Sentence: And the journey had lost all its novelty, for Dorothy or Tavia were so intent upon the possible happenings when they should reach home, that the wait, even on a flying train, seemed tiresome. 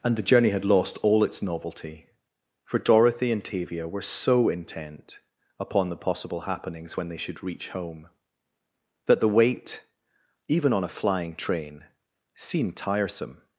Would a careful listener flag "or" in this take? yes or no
yes